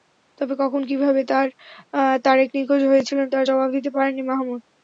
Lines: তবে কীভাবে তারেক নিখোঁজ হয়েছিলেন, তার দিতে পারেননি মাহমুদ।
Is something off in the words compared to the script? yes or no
yes